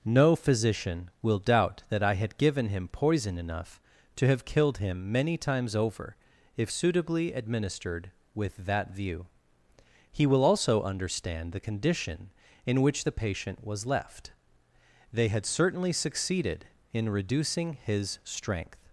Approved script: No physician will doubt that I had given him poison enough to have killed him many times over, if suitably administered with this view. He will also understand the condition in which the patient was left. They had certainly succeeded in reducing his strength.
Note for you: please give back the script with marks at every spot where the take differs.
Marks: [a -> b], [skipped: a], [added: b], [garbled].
No physician will doubt that I had given him poison enough to have killed him many times over, if suitably administered with [this -> that] view. He will also understand the condition in which the patient was left. They had certainly succeeded in reducing his strength.